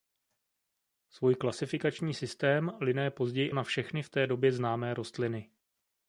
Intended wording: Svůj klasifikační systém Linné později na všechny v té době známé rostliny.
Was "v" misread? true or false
false